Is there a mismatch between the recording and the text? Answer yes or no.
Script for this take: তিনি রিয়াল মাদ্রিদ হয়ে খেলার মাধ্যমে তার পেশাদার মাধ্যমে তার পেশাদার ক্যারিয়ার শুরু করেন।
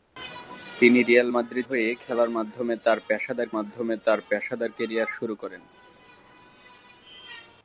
no